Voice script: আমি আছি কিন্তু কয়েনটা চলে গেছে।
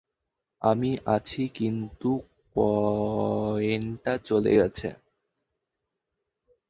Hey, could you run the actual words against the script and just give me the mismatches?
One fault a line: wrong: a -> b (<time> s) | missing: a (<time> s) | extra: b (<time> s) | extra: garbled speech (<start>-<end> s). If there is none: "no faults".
no faults